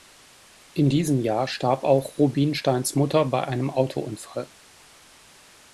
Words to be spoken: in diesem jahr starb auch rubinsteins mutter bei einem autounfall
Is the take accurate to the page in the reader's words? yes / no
yes